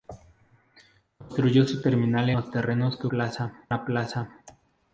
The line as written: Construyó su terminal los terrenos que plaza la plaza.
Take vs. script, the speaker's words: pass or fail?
pass